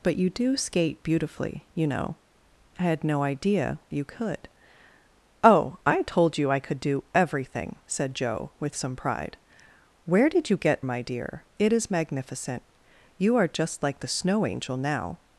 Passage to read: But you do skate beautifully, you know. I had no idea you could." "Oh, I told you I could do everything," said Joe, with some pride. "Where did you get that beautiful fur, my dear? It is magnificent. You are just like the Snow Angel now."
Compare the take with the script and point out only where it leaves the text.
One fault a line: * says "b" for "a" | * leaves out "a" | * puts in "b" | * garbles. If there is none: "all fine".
* leaves out "that beautiful fur"